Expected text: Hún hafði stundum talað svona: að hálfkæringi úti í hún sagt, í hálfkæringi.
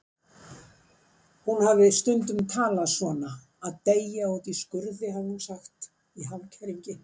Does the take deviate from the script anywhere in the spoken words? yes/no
yes